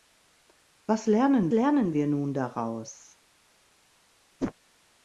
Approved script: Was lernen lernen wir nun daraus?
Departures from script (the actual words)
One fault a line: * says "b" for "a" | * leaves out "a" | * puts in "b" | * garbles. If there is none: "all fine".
all fine